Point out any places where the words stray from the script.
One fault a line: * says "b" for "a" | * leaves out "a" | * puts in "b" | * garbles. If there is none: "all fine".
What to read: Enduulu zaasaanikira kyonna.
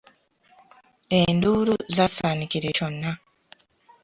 all fine